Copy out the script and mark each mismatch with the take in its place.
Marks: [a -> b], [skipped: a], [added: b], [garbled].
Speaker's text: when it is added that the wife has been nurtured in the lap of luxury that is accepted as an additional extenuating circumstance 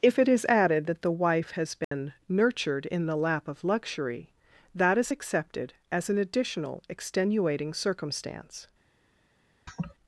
[when -> if] it is added that the wife has been nurtured in the lap of luxury that is accepted as an additional extenuating circumstance